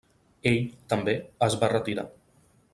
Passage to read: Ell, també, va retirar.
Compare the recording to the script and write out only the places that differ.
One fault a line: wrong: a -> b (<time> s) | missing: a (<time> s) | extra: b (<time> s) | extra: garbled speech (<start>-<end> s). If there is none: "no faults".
extra: es (1.5 s)